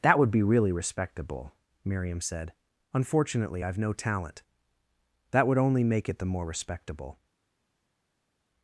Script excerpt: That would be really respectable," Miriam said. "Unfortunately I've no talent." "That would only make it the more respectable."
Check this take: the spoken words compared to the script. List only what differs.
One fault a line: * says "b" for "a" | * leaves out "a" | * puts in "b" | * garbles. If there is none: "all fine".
all fine